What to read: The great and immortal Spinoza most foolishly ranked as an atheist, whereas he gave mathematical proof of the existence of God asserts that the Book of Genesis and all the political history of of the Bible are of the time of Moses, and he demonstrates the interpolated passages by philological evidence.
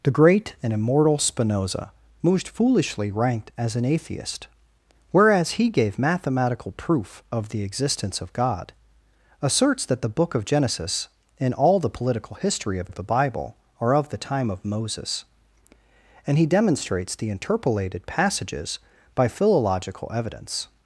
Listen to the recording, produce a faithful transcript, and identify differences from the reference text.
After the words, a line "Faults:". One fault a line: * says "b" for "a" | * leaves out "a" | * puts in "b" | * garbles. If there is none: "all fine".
The great and immortal Spinoza most foolishly ranked as an atheist, whereas he gave mathematical proof of the existence of God asserts that the Book of Genesis and all the political history of of the Bible are of the time of Moses, and he demonstrates the interpolated passages by philological evidence.
Faults:
all fine